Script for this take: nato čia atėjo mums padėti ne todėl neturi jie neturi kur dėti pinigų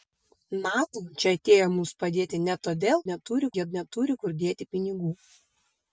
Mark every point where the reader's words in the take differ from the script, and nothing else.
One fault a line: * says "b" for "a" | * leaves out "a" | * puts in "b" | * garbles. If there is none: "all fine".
all fine